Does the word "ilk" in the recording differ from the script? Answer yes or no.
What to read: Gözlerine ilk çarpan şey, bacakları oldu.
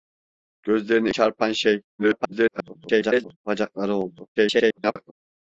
yes